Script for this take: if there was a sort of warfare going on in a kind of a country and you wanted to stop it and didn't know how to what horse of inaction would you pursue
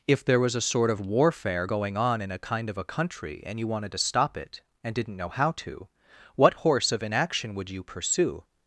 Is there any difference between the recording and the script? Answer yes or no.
no